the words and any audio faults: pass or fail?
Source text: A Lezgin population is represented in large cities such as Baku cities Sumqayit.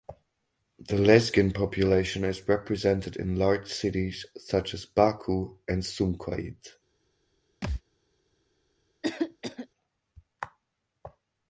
fail